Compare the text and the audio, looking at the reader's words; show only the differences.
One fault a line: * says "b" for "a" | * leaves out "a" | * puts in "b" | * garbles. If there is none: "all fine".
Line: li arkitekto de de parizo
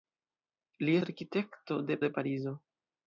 all fine